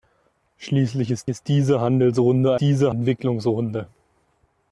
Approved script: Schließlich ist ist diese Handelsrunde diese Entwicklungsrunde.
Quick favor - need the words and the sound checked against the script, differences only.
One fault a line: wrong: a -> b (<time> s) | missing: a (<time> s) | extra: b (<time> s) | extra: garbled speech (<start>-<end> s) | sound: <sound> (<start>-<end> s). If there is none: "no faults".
no faults